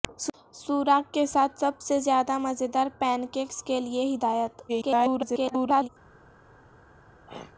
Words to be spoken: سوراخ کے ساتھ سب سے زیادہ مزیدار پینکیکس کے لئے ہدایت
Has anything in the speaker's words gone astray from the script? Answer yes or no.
yes